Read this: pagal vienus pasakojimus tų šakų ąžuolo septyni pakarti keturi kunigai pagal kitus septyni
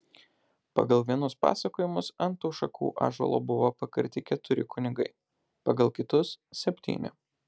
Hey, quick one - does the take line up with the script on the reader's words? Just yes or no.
no